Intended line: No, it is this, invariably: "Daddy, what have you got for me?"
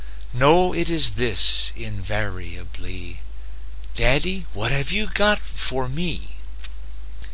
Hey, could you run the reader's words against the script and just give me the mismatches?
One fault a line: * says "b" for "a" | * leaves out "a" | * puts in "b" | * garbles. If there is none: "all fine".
all fine